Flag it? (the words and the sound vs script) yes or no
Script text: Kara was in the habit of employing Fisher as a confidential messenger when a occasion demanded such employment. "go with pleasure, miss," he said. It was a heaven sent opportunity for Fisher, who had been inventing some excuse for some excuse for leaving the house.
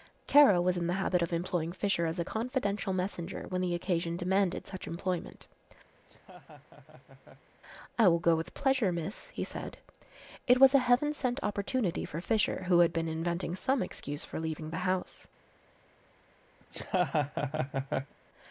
yes